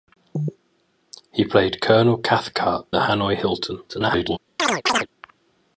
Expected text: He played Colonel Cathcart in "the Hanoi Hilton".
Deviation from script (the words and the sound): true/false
true